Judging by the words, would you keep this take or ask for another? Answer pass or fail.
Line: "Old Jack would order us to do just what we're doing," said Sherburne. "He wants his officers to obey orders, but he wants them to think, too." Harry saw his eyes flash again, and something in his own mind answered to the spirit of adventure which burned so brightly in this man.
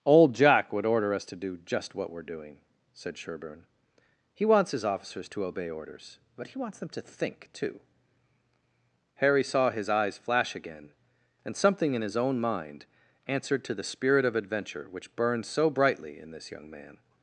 fail